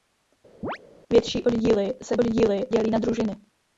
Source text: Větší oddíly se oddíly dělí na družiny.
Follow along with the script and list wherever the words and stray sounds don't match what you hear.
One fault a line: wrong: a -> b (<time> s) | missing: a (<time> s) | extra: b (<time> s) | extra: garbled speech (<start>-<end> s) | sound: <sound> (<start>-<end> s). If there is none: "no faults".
sound: chirp (0.6-0.8 s)